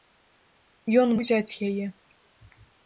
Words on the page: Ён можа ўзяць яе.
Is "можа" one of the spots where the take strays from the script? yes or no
yes